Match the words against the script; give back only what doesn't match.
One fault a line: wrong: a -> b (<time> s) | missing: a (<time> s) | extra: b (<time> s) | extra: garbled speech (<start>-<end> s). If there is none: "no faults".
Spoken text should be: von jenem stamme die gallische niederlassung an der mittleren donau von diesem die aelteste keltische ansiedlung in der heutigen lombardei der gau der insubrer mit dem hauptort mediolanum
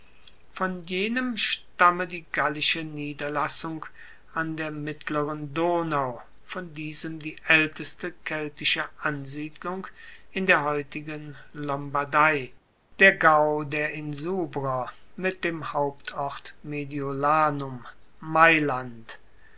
no faults